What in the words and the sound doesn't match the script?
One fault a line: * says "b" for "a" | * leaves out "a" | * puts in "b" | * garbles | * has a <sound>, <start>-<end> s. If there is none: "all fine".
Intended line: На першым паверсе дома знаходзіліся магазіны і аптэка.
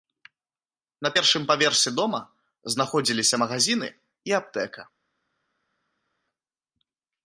all fine